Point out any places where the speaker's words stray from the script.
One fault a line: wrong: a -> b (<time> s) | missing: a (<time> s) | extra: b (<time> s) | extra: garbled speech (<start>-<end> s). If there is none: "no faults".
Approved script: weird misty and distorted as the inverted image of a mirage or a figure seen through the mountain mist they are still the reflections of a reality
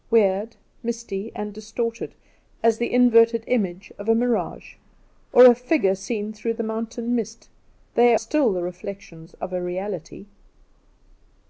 missing: are (8.2 s)